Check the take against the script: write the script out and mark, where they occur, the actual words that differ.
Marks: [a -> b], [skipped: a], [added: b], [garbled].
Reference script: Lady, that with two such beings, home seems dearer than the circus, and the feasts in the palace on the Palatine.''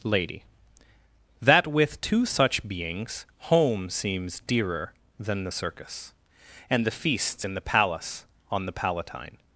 Lady, that with two such beings, home seems dearer than the circus, and the feasts in the palace on the Palatine.''